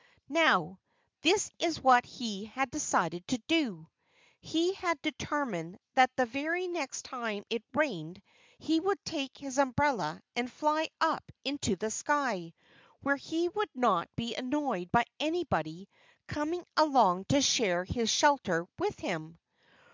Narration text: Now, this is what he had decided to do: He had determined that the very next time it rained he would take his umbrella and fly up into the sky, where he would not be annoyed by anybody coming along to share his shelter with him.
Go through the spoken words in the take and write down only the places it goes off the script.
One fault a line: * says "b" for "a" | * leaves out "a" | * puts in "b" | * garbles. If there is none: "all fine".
all fine